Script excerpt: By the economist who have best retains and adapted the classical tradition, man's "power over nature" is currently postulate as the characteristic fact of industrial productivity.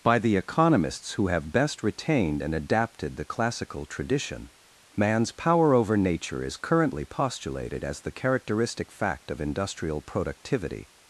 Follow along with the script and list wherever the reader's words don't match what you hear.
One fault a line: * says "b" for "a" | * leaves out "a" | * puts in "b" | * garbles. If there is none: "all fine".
* says "economists" for "economist"
* says "retained" for "retains"
* says "postulated" for "postulate"